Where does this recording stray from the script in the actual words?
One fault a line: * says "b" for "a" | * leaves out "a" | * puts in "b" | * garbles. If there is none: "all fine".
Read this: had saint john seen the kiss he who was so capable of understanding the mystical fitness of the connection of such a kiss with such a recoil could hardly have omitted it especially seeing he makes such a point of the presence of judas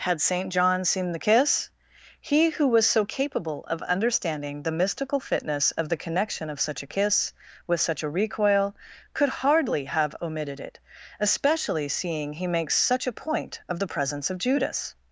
all fine